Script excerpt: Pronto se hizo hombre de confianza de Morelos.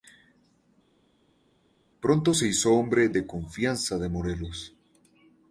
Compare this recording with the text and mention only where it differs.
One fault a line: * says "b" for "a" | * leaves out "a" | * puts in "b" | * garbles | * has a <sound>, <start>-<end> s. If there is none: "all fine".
all fine